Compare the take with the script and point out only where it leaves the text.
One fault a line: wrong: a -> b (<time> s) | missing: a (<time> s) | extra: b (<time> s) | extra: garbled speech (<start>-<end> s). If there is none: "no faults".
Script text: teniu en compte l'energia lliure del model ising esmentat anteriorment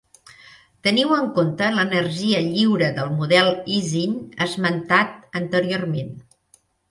no faults